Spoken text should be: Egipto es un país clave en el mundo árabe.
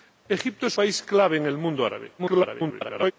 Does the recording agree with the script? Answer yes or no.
no